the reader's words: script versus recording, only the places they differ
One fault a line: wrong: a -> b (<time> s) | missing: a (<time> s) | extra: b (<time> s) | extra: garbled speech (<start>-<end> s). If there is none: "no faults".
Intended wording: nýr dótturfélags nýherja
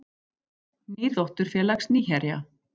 no faults